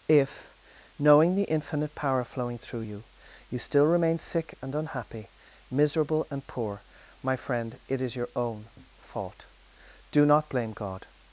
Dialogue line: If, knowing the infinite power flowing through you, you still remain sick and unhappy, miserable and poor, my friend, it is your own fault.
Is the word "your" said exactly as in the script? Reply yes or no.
yes